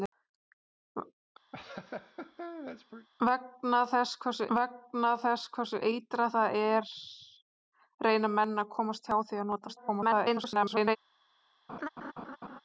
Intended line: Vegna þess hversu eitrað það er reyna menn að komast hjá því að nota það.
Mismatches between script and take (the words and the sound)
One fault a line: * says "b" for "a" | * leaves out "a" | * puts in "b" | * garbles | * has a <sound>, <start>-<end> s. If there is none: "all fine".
* has a laugh, 1.5-3.1 s
* puts in "vegna þess hversu"
* garbles
* has a laugh, 11.7-12.6 s